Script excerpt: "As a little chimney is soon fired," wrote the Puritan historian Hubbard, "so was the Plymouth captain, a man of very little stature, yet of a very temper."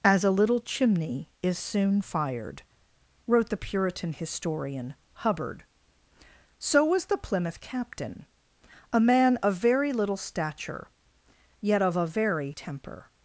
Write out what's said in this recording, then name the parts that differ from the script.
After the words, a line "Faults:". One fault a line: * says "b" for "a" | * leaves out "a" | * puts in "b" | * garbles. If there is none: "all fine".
"As a little chimney is soon fired," wrote the Puritan historian Hubbard, "so was the Plymouth captain, a man of very little stature, yet of a very temper."
Faults:
all fine